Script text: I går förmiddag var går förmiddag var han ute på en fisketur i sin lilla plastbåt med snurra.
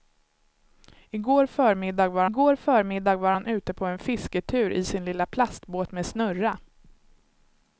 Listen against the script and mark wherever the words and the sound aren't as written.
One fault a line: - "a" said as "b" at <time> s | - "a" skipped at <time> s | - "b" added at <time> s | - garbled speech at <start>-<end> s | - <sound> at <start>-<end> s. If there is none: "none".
none